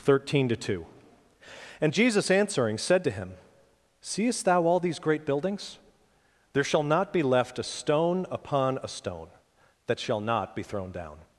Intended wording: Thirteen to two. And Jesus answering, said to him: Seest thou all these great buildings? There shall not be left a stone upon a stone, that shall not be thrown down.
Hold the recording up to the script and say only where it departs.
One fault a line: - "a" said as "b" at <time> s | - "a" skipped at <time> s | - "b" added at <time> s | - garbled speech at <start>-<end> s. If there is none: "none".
none